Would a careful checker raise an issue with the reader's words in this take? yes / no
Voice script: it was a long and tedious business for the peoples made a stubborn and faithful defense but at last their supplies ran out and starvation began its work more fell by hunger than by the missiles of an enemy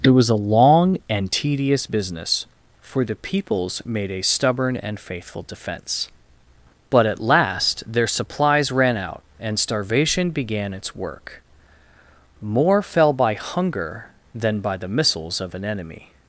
no